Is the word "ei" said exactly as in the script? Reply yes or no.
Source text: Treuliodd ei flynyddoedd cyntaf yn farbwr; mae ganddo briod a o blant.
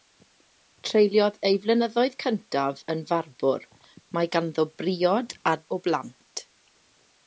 yes